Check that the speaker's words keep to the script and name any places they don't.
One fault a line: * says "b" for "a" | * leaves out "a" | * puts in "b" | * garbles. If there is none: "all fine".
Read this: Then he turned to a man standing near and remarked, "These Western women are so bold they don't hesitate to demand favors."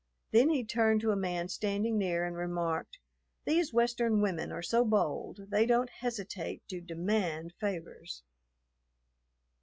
all fine